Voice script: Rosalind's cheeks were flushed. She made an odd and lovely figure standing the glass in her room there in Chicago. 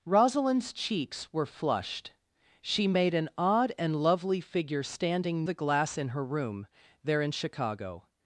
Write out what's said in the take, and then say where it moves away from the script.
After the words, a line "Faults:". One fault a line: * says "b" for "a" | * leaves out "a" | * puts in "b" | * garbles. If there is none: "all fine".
Rosalind's cheeks were flushed. She made an odd and lovely figure standing the glass in her room there in Chicago.
Faults:
all fine